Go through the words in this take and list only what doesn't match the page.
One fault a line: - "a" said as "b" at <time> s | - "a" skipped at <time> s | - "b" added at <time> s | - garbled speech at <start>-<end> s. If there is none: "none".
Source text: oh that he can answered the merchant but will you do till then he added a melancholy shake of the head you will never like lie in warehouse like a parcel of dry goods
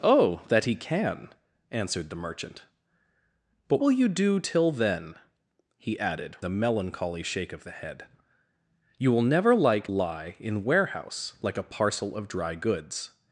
none